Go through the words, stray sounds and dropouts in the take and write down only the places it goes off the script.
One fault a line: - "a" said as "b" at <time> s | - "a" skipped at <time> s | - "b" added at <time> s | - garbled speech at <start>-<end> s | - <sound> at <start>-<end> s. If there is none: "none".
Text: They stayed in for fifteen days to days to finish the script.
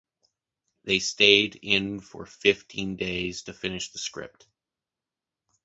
- "days to" skipped at 3.5 s